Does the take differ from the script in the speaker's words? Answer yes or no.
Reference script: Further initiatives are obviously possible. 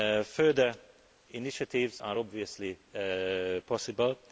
no